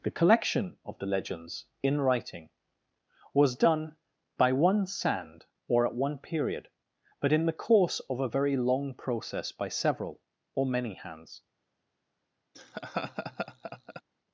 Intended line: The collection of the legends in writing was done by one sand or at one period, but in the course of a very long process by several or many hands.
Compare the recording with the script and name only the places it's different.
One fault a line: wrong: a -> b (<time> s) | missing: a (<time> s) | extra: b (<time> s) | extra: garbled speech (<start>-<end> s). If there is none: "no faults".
no faults